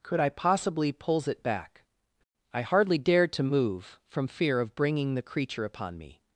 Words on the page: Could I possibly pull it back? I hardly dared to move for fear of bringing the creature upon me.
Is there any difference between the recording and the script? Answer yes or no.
yes